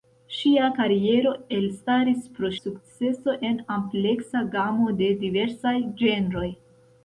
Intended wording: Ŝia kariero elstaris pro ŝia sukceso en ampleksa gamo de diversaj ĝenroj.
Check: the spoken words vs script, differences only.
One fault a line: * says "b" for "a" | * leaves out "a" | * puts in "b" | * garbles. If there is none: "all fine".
* leaves out "ŝia"